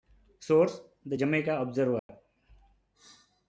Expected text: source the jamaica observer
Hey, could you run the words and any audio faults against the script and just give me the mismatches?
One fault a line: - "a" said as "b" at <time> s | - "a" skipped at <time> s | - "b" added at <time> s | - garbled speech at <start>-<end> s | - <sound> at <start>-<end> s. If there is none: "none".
- dropout at 2.0-2.1 s